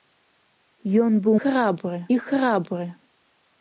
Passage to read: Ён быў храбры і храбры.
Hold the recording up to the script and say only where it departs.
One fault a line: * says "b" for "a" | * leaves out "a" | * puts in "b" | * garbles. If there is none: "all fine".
all fine